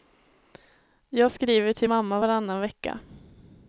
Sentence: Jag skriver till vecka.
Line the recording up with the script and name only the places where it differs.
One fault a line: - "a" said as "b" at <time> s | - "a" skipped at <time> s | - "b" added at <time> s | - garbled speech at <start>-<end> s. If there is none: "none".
- "mamma varannan" added at 1.9 s